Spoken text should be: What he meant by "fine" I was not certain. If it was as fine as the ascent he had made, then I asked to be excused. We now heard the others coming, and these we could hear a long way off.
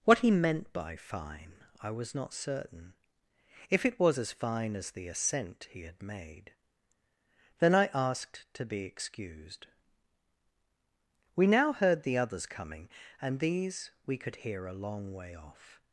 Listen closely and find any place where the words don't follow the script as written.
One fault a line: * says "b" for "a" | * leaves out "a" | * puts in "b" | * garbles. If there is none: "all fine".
all fine